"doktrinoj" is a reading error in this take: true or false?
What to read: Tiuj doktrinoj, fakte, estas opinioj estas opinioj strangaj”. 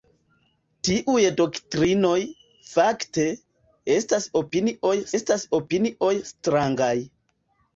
false